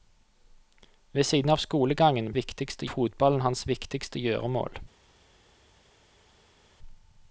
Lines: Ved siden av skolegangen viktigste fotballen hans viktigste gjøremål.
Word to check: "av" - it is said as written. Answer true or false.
true